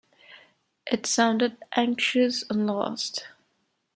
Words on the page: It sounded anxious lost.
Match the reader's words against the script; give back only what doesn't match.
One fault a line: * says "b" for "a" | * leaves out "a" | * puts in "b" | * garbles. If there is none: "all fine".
* puts in "and"